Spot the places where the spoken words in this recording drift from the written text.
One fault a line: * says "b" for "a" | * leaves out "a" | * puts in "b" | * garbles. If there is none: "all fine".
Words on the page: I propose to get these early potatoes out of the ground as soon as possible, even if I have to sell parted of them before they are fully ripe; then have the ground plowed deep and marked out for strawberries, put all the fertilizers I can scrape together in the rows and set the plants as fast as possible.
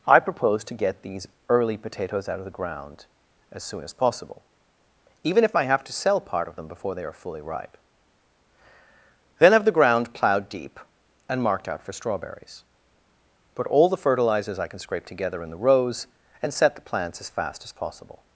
* says "part" for "parted"